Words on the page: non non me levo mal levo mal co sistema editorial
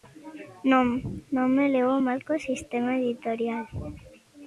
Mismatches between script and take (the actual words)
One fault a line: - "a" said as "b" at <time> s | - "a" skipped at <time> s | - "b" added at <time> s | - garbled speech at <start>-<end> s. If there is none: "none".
- "levo mal" skipped at 2.2 s